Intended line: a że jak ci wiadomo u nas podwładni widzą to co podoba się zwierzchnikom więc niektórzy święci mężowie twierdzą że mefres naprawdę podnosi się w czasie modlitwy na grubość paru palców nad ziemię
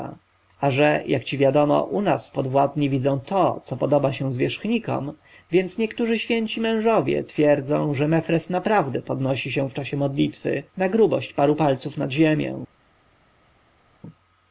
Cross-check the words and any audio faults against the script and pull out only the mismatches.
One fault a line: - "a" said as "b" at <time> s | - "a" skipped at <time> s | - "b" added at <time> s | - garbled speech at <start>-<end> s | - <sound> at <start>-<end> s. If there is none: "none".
none